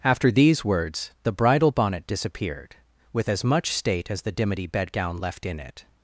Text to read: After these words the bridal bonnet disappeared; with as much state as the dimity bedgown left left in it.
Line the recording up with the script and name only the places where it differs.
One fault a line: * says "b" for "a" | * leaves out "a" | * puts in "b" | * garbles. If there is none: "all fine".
* leaves out "left"